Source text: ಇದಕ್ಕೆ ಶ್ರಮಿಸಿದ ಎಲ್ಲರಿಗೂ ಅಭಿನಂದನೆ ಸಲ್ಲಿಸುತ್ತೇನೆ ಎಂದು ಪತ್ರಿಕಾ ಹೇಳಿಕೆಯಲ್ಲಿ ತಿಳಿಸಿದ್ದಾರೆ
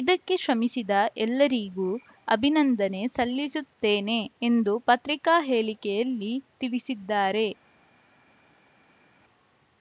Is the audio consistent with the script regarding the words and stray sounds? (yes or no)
yes